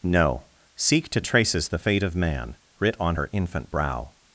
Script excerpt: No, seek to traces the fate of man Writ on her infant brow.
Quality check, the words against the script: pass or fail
pass